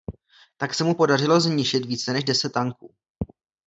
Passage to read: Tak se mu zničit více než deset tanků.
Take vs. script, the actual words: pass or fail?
fail